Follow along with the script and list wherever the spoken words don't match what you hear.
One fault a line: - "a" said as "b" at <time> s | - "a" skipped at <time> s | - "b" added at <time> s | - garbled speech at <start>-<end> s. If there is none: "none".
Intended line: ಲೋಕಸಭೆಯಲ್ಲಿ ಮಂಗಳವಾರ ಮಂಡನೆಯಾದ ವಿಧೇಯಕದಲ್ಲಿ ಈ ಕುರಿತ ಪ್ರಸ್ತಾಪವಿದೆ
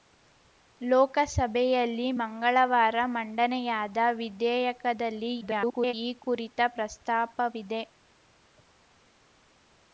- garbled speech at 5.4-5.9 s